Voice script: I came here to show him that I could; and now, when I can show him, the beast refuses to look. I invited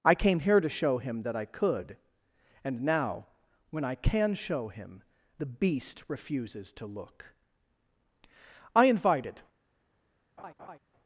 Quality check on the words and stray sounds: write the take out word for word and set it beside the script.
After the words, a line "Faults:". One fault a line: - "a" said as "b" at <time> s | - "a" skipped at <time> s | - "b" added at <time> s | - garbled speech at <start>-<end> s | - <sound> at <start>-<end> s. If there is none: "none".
I came here to show him that I could; and now, when I can show him, the beast refuses to look. I invited
Faults:
- laugh at 10.4-10.8 s